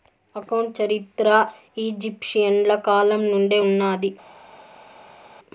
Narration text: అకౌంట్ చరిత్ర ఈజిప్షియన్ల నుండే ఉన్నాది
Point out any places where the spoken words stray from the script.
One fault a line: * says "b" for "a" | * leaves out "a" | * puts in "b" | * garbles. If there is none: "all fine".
* puts in "కాలం"